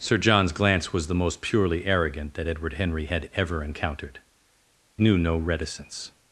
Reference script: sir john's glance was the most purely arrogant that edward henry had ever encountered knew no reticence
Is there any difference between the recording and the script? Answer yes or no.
no